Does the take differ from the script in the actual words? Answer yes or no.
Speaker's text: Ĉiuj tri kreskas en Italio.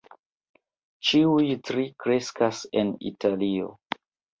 no